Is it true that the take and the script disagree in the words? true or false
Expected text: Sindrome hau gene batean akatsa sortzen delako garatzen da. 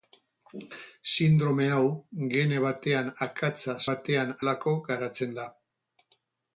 true